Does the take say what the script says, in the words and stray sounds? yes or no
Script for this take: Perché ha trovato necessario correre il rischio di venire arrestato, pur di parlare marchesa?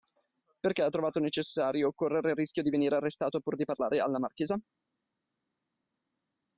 no